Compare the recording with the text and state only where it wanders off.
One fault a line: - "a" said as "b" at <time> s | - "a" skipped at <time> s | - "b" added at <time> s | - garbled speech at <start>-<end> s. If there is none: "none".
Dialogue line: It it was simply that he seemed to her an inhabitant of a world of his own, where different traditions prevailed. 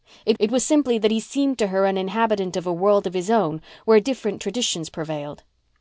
none